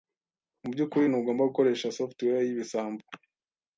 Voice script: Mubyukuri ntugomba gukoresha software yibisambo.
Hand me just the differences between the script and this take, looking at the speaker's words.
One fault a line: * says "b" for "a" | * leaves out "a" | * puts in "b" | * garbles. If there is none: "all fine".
all fine